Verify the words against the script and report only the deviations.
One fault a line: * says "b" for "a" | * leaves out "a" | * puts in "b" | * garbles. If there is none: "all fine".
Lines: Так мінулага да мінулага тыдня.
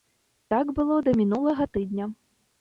* says "было" for "мінулага"